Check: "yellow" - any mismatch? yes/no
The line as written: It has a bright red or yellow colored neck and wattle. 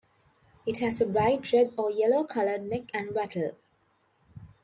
no